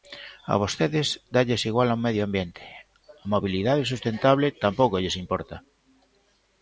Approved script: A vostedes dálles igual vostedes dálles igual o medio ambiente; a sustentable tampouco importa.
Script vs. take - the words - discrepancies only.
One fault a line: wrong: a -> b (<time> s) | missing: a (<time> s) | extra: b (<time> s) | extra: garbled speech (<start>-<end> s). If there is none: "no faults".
missing: vostedes dálles igual (1.9 s)
extra: mobilidade (3.3 s)
extra: lles (5.0 s)